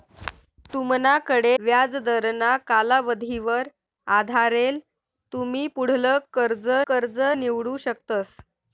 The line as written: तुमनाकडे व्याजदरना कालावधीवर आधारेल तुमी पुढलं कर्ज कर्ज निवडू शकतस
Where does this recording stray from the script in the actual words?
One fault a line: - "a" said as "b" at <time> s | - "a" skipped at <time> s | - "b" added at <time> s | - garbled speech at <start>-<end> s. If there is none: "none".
none